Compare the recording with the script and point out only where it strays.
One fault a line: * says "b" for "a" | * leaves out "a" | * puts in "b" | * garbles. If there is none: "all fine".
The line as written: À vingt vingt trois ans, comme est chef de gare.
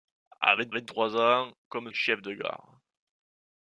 all fine